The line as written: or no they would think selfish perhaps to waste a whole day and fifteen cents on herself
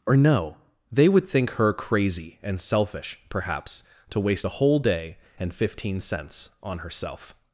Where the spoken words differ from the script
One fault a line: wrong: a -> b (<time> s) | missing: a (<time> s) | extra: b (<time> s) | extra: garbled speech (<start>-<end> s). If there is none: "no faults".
extra: her crazy and (1.5 s)